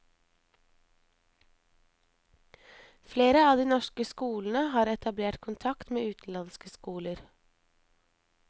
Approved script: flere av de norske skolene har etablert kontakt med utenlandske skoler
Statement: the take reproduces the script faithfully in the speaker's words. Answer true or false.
true